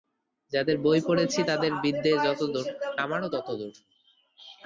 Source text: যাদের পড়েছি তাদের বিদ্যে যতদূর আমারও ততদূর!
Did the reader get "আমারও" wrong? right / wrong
right